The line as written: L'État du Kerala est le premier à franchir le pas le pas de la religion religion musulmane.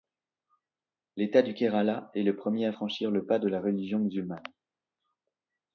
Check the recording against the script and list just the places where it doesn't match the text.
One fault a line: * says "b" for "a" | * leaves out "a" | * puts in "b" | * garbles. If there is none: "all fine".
* leaves out "le pas"
* leaves out "religion"